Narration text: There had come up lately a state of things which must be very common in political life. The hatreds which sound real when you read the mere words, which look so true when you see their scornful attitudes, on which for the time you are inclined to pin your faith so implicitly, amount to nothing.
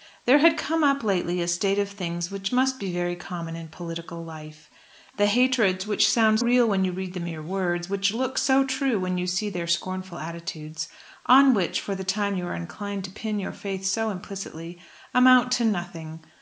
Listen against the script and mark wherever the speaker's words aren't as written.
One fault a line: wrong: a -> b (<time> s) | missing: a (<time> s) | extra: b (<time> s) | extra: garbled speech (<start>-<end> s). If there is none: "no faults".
no faults